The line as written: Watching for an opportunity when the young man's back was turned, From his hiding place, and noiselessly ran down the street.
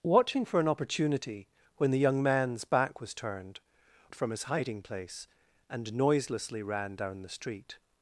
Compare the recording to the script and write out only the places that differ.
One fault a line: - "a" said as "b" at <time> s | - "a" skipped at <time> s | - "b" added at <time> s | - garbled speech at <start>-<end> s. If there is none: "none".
none